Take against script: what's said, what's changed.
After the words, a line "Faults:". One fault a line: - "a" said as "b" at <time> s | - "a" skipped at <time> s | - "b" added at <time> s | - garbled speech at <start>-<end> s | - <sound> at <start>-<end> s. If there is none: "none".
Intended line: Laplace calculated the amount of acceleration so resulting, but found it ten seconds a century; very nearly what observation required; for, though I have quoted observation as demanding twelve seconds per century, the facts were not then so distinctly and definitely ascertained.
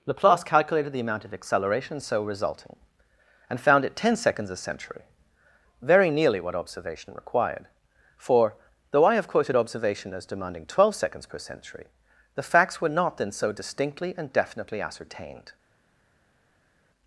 Laplace calculated the amount of acceleration so resulting, and found it ten seconds a century; very nearly what observation required; for, though I have quoted observation as demanding twelve seconds per century, the facts were not then so distinctly and definitely ascertained.
Faults:
- "but" said as "and" at 3.5 s